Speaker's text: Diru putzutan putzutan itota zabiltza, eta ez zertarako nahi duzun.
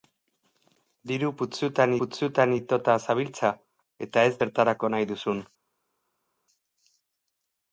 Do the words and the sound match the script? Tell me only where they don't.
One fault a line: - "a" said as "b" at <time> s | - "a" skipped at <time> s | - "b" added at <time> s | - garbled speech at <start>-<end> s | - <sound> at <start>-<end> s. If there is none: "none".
none